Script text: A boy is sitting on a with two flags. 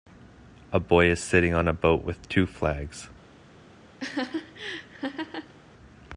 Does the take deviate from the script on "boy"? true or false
false